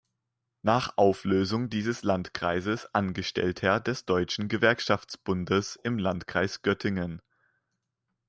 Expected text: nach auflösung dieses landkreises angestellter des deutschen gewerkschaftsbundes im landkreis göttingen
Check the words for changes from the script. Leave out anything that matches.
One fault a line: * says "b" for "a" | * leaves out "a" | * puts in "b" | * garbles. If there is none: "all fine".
all fine